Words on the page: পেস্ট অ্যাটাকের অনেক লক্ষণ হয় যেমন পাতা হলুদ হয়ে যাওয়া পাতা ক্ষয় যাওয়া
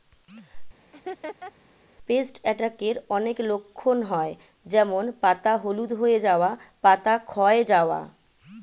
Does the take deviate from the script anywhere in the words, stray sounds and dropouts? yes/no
yes